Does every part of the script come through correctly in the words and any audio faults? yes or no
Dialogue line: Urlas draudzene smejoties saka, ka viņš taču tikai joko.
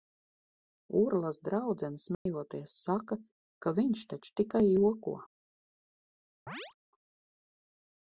no